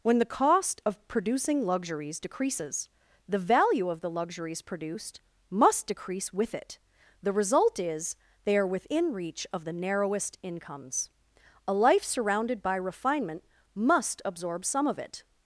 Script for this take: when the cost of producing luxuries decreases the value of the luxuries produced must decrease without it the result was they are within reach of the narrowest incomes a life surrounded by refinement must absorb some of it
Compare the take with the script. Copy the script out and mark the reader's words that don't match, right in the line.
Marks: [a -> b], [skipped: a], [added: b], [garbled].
when the cost of producing luxuries decreases the value of the luxuries produced must decrease [without -> with] it the result [was -> is] they are within reach of the narrowest incomes a life surrounded by refinement must absorb some of it